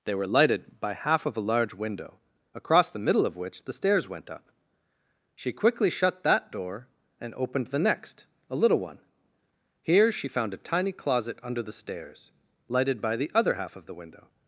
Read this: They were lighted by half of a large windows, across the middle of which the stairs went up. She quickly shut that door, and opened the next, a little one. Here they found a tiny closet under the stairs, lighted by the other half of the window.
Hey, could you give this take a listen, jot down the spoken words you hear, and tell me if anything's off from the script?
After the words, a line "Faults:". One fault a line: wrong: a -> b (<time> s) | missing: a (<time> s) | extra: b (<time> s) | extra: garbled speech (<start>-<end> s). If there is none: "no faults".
They were lighted by half of a large window, across the middle of which the stairs went up. She quickly shut that door, and opened the next, a little one. Here she found a tiny closet under the stairs, lighted by the other half of the window.
Faults:
wrong: windows -> window (1.8 s)
wrong: they -> she (10.1 s)